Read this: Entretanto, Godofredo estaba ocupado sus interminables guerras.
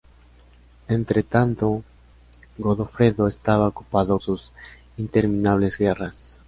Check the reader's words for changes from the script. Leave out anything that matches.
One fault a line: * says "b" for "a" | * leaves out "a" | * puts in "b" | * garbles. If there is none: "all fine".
all fine